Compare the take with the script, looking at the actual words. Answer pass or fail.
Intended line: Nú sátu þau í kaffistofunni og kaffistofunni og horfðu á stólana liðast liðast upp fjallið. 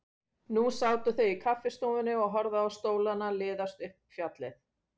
fail